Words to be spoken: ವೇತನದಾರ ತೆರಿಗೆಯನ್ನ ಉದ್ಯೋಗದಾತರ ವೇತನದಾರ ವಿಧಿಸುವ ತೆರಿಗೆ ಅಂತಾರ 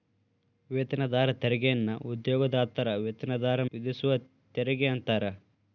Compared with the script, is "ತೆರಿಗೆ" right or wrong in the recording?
right